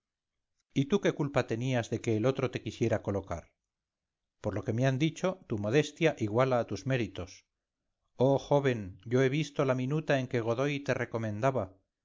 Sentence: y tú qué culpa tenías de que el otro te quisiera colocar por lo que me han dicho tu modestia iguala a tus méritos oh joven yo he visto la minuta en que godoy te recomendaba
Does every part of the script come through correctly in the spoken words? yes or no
yes